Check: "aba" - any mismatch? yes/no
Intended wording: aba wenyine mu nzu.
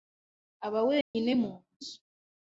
no